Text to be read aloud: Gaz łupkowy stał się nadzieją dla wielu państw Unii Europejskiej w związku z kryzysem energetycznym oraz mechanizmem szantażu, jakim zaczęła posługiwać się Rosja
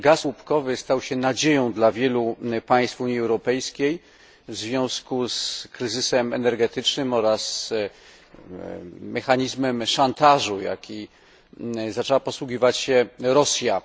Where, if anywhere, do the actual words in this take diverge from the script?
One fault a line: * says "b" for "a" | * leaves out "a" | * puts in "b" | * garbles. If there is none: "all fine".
all fine